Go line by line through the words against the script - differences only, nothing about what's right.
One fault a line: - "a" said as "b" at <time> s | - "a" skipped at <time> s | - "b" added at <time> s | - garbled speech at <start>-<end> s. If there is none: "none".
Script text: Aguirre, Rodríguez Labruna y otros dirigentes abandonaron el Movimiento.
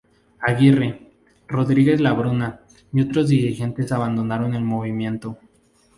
none